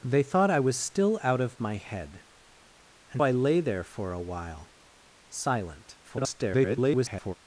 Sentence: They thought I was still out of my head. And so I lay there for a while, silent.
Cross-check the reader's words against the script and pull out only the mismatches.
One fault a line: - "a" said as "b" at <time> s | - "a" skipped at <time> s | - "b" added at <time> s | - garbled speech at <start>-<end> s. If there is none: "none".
- "so" skipped at 3.2 s
- garbled speech at 6.0-7.3 s